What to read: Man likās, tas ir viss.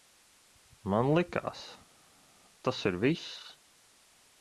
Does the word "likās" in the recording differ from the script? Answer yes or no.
no